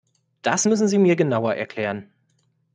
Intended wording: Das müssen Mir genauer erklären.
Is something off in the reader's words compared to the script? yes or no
yes